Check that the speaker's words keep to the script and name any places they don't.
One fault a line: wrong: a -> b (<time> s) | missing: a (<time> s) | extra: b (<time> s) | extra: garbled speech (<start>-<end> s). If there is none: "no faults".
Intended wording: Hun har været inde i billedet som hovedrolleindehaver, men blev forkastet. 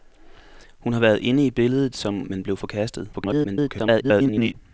missing: hovedrolleindehaver (2.2 s)
extra: garbled speech (3.1-4.5 s)